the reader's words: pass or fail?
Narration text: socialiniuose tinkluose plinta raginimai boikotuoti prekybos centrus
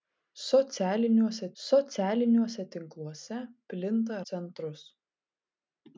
fail